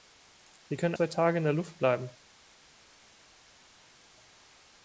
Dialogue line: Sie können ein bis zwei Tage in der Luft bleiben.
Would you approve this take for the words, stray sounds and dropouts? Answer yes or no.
no